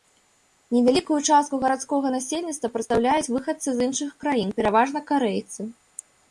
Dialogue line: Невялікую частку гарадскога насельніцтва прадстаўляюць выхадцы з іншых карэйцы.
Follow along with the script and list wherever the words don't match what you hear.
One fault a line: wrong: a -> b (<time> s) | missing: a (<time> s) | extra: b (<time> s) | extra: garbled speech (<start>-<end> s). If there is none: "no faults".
extra: краін пераважна (4.2 s)